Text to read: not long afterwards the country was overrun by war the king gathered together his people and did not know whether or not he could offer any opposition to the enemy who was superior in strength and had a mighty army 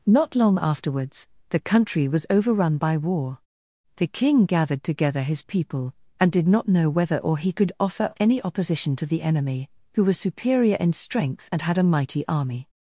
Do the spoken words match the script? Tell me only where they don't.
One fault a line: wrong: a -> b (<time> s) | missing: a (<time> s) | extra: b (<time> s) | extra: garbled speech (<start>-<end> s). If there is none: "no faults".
missing: not (7.4 s)